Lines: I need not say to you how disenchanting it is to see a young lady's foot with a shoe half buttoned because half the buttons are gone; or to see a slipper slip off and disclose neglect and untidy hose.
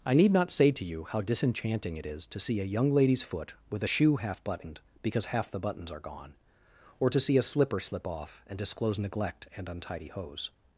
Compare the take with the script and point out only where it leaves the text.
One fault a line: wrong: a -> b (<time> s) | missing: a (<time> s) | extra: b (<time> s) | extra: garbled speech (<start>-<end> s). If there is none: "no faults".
no faults